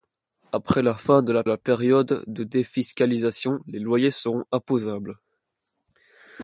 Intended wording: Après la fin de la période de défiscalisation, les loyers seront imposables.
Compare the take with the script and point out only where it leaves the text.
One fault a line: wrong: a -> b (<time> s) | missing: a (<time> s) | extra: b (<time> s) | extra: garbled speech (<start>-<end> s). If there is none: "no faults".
extra: la (1.4 s)